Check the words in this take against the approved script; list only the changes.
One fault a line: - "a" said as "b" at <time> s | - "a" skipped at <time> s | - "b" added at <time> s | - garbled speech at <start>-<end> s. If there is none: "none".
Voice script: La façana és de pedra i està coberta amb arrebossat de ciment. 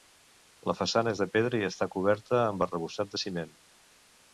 none